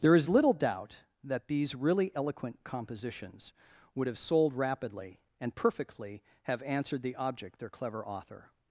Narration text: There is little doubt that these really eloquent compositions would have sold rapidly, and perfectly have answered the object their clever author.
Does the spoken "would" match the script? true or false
true